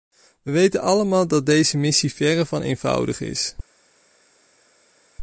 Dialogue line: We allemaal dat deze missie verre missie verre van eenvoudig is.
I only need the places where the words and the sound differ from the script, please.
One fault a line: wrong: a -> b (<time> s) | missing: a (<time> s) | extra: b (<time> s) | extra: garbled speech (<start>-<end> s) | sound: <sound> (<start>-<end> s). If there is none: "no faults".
extra: weten (0.5 s)
missing: missie verre (2.4 s)